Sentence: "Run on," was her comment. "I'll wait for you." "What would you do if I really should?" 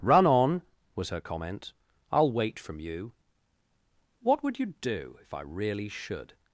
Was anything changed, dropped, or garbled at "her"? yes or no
no